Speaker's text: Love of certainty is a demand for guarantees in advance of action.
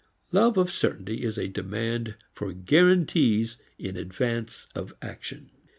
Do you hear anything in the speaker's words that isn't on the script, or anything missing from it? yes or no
no